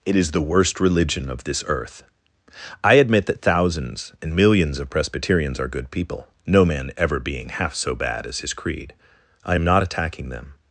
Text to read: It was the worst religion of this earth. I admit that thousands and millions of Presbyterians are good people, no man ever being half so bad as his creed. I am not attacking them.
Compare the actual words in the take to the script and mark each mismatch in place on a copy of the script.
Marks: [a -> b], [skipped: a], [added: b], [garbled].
It [was -> is] the worst religion of this earth. I admit that thousands and millions of Presbyterians are good people, no man ever being half so bad as his creed. I am not attacking them.